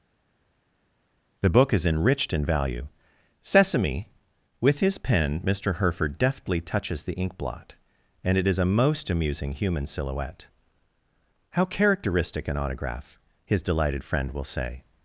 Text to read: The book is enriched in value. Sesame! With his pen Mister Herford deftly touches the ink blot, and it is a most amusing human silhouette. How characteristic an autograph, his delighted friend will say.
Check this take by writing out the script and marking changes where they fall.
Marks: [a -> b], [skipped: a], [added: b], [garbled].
The book is enriched in value. Sesame! With his pen Mister Herford deftly touches the ink blot, and it is a most amusing human silhouette. How characteristic an autograph, his delighted friend will say.